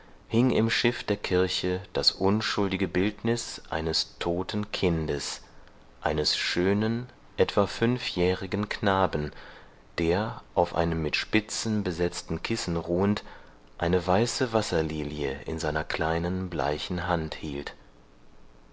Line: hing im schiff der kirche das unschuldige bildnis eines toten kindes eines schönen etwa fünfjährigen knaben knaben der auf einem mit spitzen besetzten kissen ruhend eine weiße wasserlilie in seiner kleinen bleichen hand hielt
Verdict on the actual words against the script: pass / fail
fail